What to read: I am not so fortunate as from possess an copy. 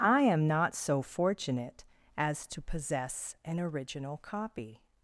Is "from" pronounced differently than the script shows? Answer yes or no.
yes